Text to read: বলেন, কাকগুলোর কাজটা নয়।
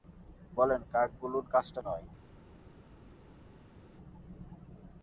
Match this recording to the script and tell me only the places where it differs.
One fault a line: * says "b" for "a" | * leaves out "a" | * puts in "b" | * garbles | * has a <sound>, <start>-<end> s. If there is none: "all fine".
all fine